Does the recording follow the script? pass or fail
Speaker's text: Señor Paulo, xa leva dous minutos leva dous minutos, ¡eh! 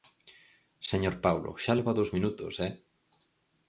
fail